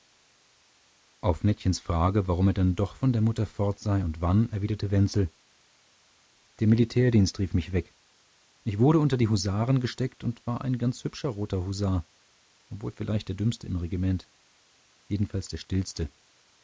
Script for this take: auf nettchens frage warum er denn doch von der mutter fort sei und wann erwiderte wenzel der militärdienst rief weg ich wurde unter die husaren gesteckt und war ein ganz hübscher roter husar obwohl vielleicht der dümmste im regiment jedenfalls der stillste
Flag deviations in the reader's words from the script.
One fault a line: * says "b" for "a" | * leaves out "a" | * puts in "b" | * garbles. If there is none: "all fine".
* puts in "mich"